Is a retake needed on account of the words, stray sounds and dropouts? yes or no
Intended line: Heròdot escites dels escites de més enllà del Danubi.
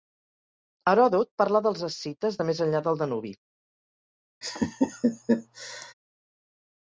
yes